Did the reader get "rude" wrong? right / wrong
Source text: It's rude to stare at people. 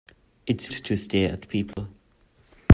wrong